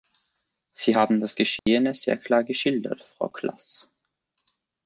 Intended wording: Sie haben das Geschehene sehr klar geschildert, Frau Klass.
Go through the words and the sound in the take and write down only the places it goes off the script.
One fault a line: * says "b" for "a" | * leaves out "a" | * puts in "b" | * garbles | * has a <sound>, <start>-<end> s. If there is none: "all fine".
* has a dropout, 1.6-1.7 s